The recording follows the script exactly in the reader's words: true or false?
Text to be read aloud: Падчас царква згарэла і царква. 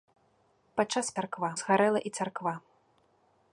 true